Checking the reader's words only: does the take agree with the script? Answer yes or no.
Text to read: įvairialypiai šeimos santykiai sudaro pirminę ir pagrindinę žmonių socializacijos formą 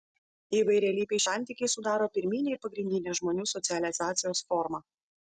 no